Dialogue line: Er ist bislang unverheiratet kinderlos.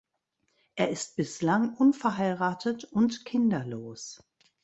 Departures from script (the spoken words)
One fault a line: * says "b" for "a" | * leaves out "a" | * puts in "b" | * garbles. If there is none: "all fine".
* puts in "und"